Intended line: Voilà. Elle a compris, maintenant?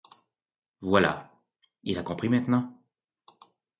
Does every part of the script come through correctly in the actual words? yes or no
no